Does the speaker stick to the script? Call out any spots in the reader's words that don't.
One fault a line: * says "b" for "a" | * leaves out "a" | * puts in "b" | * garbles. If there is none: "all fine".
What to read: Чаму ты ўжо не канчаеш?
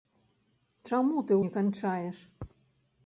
* leaves out "ўжо"